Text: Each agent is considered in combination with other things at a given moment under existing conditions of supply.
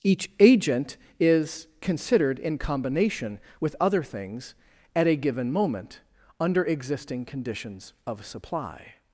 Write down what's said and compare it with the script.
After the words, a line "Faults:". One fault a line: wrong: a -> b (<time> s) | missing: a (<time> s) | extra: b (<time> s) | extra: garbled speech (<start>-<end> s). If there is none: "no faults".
Each agent is considered in combination with other things at a given moment under existing conditions of supply.
Faults:
no faults